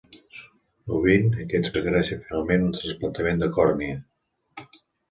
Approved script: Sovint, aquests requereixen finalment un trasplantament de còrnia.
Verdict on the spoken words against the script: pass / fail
pass